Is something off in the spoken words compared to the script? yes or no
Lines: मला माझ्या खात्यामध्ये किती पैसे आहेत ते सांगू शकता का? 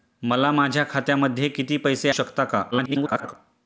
yes